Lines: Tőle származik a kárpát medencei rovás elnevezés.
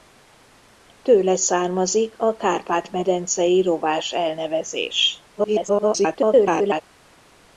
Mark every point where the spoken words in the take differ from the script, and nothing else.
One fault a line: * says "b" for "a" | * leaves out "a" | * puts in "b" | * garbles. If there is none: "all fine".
* garbles